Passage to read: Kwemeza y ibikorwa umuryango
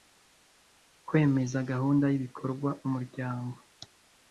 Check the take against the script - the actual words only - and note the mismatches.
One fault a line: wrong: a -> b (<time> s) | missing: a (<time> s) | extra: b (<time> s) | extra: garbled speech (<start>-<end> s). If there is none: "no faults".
extra: gahunda (1.7 s)